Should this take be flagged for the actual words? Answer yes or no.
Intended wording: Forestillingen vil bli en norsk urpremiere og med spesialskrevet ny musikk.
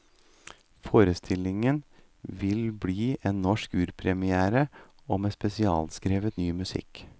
no